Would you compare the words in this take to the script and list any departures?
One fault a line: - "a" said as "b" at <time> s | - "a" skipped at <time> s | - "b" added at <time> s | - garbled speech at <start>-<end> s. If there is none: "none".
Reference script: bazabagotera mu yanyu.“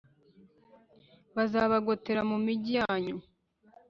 - "migi" added at 2.5 s